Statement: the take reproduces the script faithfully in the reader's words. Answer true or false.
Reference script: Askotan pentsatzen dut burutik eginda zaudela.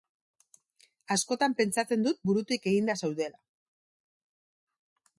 true